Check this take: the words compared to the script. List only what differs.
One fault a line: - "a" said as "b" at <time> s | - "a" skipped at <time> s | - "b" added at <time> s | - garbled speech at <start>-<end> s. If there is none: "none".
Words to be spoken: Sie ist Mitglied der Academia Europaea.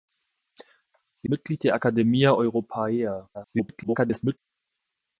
- "ist" skipped at 1.3 s
- garbled speech at 3.3-4.4 s